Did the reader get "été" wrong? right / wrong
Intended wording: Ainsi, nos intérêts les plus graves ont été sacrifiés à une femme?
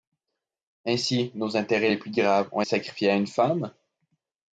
wrong